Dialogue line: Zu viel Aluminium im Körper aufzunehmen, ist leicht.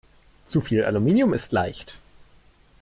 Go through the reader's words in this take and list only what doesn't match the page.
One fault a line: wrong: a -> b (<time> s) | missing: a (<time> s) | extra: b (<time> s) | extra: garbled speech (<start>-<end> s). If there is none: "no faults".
missing: im Körper aufzunehmen (1.3 s)